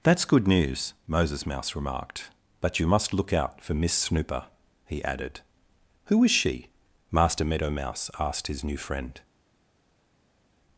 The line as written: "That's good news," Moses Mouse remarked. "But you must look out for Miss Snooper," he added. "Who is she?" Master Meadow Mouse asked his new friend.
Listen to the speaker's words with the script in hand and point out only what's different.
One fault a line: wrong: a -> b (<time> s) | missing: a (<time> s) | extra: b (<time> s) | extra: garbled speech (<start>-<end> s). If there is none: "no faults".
no faults